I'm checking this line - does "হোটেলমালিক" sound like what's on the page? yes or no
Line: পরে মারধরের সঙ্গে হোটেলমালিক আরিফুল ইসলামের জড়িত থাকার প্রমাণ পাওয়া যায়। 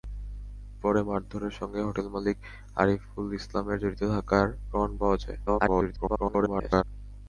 yes